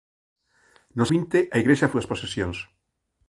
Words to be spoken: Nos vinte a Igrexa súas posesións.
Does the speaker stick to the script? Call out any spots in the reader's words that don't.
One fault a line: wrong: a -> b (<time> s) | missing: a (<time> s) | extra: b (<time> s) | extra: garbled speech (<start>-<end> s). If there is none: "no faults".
no faults